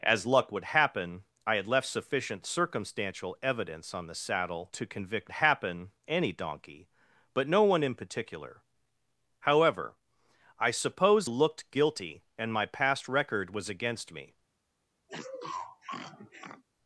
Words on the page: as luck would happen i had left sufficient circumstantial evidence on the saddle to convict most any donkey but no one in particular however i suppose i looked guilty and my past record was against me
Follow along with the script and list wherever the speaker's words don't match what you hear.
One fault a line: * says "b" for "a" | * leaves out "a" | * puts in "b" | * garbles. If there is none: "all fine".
* says "happen" for "most"
* leaves out "i"